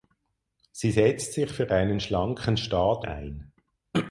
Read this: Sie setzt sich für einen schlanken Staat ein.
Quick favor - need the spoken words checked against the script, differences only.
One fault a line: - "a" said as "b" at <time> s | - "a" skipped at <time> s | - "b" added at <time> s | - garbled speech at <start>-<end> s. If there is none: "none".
none